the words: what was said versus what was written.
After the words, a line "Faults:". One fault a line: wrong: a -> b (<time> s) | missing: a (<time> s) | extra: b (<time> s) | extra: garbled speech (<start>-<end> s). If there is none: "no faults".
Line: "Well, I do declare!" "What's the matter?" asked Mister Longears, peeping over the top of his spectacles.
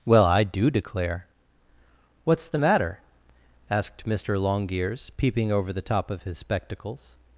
"Well, I do declare!" "What's the matter?" asked Mister Longears, peeping over the top of his spectacles.
Faults:
no faults